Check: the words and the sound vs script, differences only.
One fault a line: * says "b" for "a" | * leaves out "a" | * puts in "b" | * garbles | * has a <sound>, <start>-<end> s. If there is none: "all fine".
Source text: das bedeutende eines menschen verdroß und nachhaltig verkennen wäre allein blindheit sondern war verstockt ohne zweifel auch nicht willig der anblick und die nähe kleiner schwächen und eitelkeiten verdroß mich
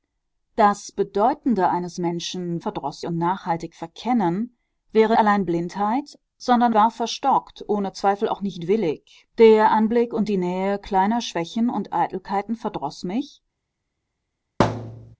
* has a thud, 14.6-15.2 s